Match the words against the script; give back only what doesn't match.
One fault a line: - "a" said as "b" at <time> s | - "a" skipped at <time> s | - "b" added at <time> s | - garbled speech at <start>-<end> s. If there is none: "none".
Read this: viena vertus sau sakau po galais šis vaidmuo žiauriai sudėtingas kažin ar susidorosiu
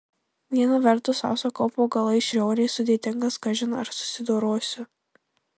- "šis vaidmuo" skipped at 2.3 s